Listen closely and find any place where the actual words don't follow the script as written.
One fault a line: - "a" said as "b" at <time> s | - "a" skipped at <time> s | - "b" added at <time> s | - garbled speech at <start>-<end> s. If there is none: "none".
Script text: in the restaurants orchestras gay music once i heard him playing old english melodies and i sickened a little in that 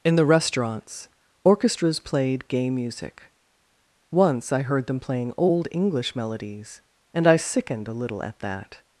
- "played" added at 2.0 s
- "him" said as "them" at 4.9 s
- "in" said as "at" at 8.2 s